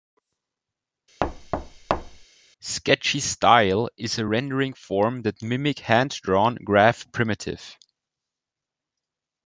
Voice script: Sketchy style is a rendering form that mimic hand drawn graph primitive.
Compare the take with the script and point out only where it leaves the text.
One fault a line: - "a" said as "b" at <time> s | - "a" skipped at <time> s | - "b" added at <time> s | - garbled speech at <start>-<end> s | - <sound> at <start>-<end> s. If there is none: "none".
- thud at 1.2-2.3 s